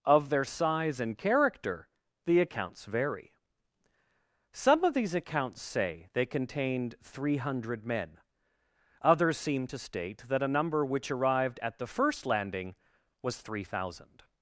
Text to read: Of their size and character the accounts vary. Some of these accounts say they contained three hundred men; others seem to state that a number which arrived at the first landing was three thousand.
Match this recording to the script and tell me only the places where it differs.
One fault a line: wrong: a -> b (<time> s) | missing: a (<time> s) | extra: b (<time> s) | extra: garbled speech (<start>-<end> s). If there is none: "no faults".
no faults